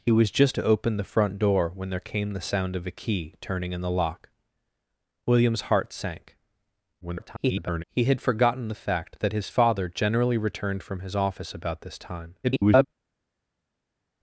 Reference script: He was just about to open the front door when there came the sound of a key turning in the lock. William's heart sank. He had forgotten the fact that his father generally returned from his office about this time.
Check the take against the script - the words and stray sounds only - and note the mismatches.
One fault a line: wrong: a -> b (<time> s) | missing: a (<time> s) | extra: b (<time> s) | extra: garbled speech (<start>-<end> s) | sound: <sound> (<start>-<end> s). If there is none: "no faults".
missing: about (0.6 s)
extra: garbled speech (7.0-7.8 s)
extra: garbled speech (12.4-12.9 s)